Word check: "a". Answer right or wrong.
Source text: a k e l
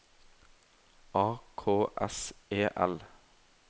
right